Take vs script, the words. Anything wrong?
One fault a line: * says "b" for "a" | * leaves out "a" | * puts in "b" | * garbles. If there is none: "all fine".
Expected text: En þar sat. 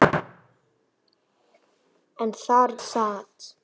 all fine